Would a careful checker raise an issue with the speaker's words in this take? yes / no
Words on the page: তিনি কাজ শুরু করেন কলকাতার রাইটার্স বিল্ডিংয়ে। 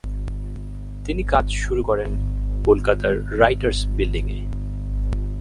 no